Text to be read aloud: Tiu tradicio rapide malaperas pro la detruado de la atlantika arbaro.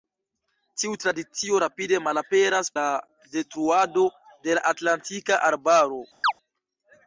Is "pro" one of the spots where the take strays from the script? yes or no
yes